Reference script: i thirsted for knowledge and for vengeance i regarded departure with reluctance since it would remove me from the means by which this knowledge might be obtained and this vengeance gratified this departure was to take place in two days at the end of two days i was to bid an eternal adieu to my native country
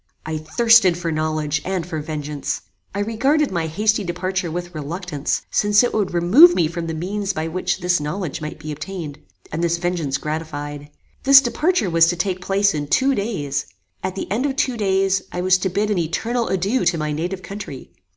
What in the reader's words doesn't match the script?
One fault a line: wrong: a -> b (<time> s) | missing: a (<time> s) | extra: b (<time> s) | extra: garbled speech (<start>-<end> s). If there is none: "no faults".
extra: my hasty (3.5 s)